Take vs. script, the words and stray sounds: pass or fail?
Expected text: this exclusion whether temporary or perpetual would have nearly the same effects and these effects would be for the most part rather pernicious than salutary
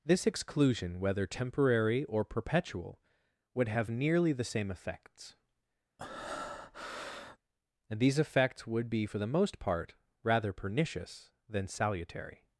fail